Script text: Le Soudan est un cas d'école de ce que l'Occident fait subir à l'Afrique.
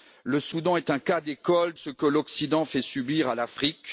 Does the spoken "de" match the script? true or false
false